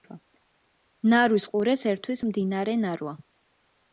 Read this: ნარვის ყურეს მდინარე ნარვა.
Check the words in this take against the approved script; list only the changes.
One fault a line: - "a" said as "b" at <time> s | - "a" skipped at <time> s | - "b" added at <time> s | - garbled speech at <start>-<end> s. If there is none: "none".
- "ერთვის" added at 1.9 s